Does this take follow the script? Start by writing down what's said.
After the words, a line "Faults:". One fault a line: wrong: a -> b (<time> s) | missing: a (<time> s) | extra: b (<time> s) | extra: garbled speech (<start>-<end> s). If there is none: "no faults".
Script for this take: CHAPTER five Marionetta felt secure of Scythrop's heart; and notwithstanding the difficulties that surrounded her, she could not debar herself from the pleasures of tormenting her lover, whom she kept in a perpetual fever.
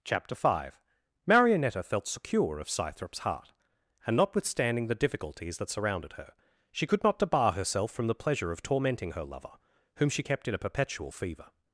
CHAPTER five Marionetta felt secure of Scythrop's heart; and notwithstanding the difficulties that surrounded her, she could not debar herself from the pleasure of tormenting her lover, whom she kept in a perpetual fever.
Faults:
wrong: pleasures -> pleasure (8.2 s)